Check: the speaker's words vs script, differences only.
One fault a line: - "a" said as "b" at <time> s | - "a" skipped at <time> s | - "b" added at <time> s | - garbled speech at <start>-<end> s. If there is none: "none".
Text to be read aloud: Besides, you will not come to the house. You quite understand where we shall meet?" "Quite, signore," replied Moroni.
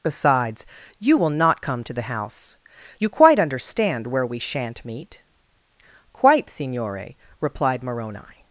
- "shall" said as "shan't" at 4.4 s